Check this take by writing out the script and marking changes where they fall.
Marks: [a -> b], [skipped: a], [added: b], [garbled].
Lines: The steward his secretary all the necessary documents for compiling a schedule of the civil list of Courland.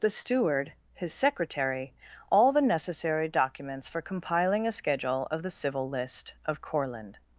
The steward his secretary all the necessary documents for compiling a schedule of the civil list of Courland.